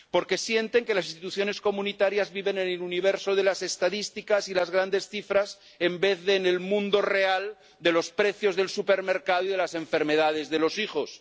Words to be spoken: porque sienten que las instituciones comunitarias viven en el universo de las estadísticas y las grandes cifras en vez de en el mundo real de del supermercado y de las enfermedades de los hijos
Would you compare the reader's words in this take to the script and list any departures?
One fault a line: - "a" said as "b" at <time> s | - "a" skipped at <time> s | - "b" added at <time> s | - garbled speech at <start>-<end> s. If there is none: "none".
- "los precios" added at 7.9 s